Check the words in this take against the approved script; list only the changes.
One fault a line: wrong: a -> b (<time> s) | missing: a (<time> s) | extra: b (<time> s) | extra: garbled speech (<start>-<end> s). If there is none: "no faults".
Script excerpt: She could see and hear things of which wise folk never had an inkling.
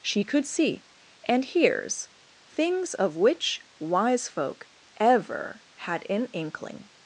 wrong: hear -> hears (1.4 s)
wrong: never -> ever (5.0 s)